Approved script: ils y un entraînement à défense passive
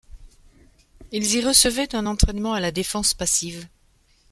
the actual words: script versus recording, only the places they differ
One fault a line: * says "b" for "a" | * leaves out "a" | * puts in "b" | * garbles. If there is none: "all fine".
* puts in "recevaient"
* puts in "la"